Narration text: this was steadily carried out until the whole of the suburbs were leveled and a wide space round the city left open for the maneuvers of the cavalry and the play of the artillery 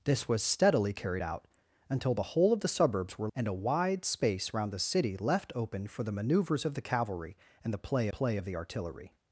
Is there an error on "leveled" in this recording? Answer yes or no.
yes